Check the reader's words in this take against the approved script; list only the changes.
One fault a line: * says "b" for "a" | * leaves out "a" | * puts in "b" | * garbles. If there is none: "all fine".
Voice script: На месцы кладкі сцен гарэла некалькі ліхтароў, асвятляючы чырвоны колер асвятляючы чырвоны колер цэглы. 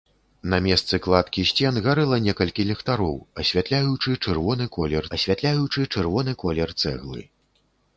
all fine